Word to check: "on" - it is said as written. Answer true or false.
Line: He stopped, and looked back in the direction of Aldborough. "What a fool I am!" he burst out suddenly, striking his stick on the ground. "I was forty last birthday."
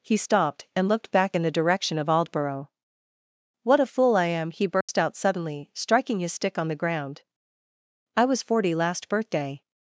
true